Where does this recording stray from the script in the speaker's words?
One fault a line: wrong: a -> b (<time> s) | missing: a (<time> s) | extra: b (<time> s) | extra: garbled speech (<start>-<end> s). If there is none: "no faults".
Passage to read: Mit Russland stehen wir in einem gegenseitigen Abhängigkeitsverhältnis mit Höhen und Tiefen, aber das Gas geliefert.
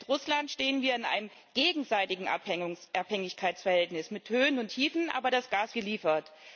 no faults